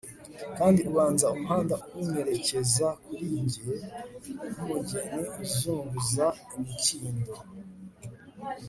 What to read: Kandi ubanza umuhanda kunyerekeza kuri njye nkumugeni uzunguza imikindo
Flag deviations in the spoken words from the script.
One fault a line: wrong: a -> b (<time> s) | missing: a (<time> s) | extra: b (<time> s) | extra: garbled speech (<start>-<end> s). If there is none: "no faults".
no faults